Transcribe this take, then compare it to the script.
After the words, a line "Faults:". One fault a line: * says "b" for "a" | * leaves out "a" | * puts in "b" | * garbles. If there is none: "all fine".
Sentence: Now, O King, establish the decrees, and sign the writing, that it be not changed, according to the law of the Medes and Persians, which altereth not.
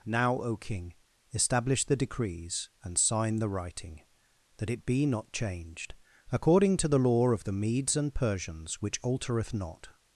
Now, O King, establish the decrees, and sign the writing, that it be not changed, according to the law of the Medes and Persians, which altereth not.
Faults:
all fine